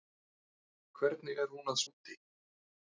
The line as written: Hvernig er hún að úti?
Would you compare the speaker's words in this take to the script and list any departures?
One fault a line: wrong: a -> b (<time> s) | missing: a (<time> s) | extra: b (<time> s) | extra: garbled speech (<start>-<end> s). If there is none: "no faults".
no faults